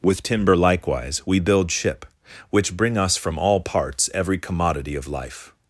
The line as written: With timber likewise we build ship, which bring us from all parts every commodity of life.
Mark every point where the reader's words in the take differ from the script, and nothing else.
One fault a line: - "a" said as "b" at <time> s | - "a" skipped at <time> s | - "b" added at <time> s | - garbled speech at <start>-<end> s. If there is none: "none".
none